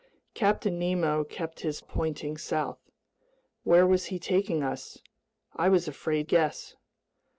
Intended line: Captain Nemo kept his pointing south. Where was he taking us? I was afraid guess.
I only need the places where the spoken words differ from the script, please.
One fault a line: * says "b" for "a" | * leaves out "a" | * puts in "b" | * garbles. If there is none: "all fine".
all fine